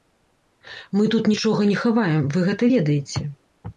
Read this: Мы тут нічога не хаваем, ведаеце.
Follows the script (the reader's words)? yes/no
no